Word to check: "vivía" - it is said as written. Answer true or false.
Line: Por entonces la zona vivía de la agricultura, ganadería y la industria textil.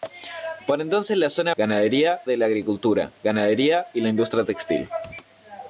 false